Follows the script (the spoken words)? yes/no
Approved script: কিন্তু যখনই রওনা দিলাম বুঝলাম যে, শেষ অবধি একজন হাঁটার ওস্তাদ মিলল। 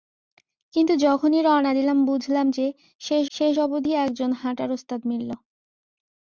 no